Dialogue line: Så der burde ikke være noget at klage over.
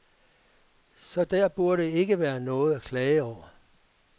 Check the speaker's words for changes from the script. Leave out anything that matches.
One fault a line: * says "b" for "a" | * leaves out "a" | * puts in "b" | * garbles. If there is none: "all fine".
all fine